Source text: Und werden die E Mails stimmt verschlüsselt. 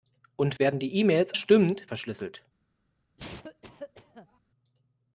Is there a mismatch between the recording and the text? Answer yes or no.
no